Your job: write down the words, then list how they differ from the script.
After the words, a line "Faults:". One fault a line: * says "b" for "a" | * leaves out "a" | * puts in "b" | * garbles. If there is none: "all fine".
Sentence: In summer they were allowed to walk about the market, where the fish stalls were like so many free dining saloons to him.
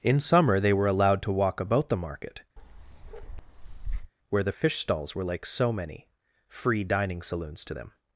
In summer they were allowed to walk about the market, where the fish stalls were like so many free dining saloons to them.
Faults:
* says "them" for "him"